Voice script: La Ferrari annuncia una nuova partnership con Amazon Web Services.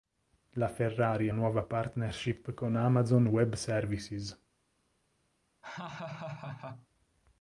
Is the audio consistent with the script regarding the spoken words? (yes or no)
no